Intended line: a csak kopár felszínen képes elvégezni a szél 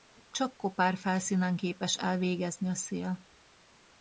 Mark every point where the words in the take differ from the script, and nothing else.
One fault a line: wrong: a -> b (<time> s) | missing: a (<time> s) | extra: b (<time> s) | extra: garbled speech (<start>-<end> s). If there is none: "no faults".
no faults